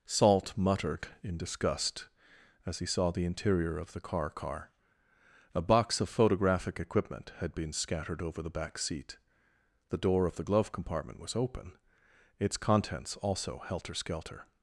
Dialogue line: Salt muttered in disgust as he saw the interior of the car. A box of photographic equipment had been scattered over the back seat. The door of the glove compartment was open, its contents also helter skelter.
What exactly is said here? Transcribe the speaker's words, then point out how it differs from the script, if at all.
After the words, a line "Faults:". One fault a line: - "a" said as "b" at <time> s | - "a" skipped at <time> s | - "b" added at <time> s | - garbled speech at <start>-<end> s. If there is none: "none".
Salt muttered in disgust as he saw the interior of the car car. A box of photographic equipment had been scattered over the back seat. The door of the glove compartment was open, its contents also helter skelter.
Faults:
- "car" added at 4.3 s